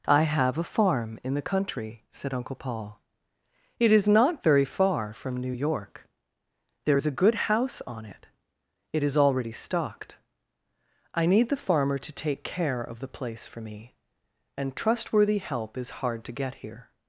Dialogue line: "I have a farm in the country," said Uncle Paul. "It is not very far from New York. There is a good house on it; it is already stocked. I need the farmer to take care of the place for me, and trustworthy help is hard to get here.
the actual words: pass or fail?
pass